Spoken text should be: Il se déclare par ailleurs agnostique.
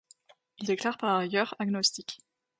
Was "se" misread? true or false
true